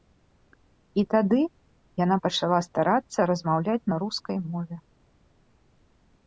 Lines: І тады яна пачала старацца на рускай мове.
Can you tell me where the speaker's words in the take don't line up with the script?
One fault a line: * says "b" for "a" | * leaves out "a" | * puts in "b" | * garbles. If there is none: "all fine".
* puts in "размаўляць"